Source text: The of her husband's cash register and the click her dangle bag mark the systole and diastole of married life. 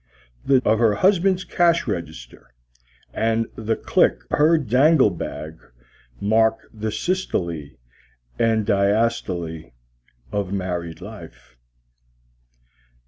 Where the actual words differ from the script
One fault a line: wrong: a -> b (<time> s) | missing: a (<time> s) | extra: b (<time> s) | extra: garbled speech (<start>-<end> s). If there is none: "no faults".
no faults